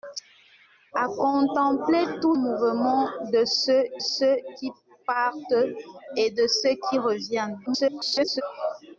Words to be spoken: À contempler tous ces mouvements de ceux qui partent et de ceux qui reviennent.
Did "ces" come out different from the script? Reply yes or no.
yes